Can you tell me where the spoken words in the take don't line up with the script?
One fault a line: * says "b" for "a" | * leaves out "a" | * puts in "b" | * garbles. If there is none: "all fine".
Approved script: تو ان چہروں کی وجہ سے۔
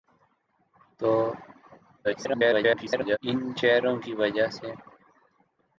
* garbles